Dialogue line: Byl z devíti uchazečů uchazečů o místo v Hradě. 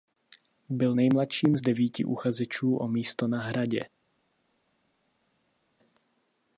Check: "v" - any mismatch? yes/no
yes